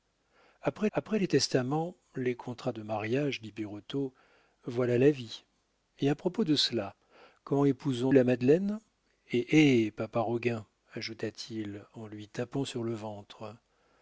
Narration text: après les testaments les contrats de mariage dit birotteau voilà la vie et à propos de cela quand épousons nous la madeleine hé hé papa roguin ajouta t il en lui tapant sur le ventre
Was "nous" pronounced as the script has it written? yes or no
no